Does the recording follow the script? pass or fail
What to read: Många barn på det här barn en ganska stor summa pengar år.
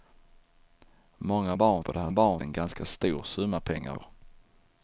pass